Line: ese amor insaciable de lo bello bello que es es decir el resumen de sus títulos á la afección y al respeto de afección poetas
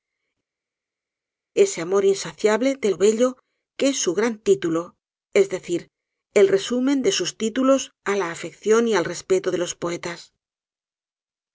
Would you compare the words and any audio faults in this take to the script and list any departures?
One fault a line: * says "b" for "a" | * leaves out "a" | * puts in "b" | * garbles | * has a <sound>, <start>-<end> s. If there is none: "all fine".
* leaves out "bello"
* puts in "su gran título"
* says "los" for "afección"